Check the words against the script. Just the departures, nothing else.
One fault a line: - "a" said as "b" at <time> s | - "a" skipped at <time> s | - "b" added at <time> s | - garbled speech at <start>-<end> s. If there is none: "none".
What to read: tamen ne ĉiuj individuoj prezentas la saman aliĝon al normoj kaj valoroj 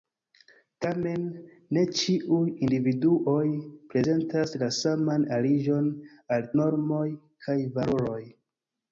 none